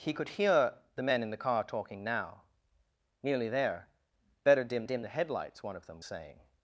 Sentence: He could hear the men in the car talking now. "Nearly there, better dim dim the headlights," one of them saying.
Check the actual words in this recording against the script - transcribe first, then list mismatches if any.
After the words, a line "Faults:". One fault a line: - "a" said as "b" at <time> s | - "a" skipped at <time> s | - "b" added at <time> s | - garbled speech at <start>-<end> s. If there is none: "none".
He could hear the men in the car talking now. "Nearly there, better dim dim the headlights," one of them saying.
Faults:
none